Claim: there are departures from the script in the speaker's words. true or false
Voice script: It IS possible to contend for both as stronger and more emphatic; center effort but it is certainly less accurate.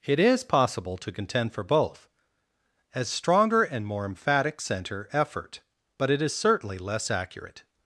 false